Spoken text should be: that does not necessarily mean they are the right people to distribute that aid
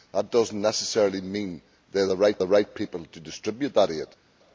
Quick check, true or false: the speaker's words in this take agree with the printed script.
false